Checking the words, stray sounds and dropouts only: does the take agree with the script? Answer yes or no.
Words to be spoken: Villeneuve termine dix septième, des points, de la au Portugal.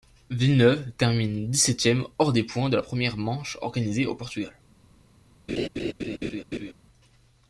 no